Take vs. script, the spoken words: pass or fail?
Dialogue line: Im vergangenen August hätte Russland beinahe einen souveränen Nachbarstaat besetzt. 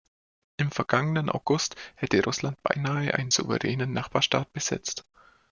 pass